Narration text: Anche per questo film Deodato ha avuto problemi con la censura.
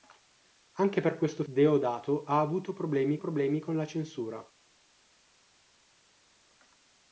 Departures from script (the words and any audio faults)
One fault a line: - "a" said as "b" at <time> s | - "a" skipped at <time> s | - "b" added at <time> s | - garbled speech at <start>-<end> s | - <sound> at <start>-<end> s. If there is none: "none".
- "film" skipped at 1.4 s
- "problemi" added at 3.2 s